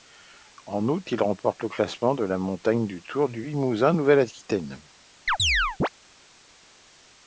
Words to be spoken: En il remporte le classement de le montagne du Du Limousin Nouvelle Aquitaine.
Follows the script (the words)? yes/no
no